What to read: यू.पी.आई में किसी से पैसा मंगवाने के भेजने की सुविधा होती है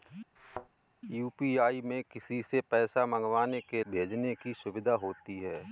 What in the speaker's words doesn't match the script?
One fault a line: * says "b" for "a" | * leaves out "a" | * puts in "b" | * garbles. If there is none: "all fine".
all fine